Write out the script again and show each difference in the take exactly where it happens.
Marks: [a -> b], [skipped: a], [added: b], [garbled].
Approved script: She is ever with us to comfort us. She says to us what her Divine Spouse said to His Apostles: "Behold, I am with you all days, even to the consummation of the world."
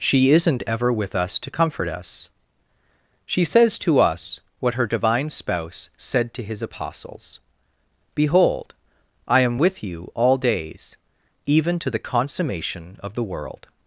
She [is -> isn't] ever with us to comfort us. She says to us what her Divine Spouse said to His Apostles: "Behold, I am with you all days, even to the consummation of the world."